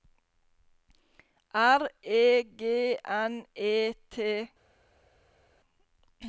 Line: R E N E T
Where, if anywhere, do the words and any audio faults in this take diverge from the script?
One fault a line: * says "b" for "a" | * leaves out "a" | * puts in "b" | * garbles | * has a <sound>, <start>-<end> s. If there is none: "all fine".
* puts in "G"